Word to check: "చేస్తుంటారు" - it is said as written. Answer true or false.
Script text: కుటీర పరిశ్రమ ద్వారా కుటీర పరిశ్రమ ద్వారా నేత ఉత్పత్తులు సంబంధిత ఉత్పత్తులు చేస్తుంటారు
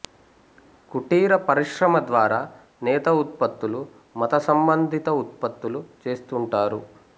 true